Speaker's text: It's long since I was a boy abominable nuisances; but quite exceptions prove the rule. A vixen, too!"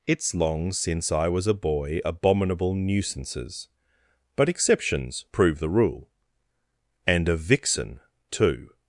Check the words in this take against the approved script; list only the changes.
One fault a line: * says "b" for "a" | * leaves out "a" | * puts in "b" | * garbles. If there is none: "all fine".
* leaves out "quite"
* puts in "And"